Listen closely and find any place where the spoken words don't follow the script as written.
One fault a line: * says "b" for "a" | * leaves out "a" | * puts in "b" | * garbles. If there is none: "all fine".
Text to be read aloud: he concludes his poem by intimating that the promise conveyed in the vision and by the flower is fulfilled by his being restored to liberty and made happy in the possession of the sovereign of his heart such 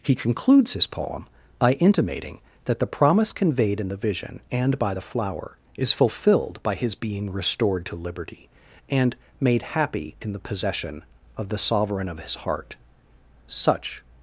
all fine